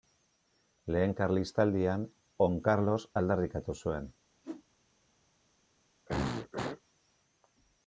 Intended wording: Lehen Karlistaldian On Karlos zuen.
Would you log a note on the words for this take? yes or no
yes